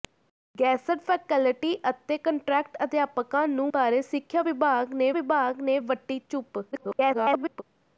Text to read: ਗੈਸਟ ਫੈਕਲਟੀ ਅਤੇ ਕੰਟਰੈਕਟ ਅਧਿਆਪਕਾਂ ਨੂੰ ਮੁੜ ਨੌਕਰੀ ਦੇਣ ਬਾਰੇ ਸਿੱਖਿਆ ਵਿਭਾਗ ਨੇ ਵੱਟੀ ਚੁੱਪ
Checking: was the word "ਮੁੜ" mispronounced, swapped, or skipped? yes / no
yes